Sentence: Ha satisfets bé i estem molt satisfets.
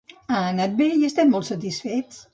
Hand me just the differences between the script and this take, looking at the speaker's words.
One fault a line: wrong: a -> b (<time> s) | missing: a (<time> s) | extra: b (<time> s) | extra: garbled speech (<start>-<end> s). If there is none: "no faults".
wrong: satisfets -> anat (0.5 s)